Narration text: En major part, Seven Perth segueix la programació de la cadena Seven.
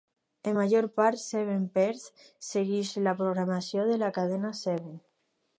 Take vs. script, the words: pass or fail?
pass